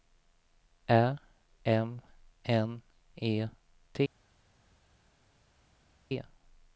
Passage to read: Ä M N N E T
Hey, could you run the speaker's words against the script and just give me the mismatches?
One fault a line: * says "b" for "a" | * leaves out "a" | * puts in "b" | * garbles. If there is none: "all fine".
* leaves out "N"